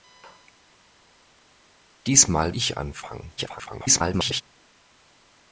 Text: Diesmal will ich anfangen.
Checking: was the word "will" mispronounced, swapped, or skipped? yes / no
yes